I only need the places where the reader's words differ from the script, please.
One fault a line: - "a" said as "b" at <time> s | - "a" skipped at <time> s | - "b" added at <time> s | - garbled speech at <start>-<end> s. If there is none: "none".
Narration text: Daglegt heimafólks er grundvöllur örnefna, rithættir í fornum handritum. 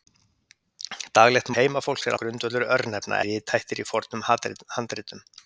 none